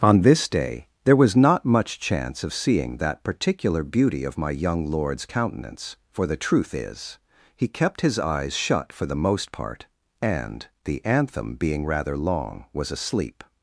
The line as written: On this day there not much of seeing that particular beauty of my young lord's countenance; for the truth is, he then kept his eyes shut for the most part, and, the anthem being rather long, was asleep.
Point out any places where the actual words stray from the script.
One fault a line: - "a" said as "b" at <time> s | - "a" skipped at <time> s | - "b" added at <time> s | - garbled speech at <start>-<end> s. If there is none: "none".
- "was" added at 1.1 s
- "chance" added at 2.0 s
- "then" skipped at 7.7 s